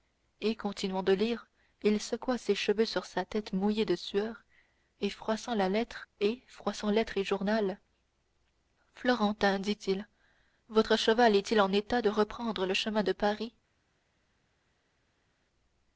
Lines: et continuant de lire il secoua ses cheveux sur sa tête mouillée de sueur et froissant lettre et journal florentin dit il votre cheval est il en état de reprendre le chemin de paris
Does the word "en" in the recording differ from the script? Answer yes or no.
no